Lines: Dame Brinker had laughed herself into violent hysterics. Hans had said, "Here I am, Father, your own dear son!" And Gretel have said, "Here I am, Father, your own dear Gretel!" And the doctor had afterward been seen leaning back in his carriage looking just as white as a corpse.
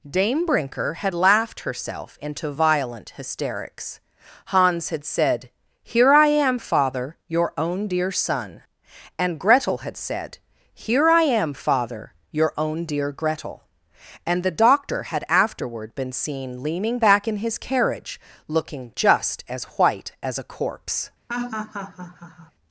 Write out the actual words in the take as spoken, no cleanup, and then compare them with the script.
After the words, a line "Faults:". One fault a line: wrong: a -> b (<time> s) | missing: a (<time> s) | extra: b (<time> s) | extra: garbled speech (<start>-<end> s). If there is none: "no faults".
Dame Brinker had laughed herself into violent hysterics. Hans had said, "Here I am, Father, your own dear son!" And Gretel had said, "Here I am, Father, your own dear Gretel!" And the doctor had afterward been seen leaning back in his carriage looking just as white as a corpse.
Faults:
wrong: have -> had (9.8 s)